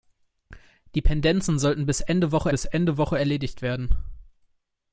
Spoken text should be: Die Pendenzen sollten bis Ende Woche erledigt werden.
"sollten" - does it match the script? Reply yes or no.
yes